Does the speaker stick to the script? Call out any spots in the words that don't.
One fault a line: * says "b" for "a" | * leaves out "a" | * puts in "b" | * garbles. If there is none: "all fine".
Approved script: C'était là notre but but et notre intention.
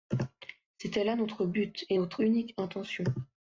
* leaves out "but"
* puts in "unique"